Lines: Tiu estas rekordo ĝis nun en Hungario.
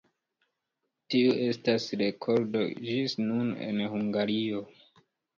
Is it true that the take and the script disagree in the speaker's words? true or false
false